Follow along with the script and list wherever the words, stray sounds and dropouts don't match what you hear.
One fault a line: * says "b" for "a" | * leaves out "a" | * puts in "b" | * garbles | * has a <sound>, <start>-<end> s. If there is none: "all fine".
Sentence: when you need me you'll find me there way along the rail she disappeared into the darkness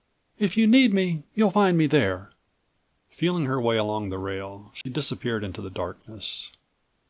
* says "if" for "when"
* puts in "feeling her"
* has a dropout, 4.8-4.9 s